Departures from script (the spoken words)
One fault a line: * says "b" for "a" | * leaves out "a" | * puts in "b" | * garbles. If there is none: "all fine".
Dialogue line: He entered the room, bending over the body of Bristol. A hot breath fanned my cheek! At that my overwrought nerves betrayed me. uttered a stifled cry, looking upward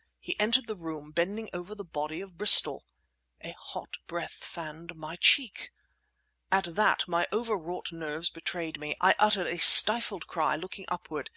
* puts in "I"